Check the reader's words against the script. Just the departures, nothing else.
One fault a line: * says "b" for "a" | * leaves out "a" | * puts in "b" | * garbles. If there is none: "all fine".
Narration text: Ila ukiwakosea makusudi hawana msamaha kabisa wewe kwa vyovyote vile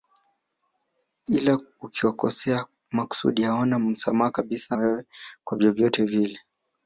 all fine